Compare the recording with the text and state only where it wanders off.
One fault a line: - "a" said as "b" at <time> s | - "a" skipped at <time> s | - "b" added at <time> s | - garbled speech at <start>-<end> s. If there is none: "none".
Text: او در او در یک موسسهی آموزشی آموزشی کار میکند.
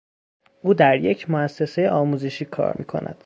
- "او در" skipped at 1.0 s
- "آموزشی" skipped at 2.5 s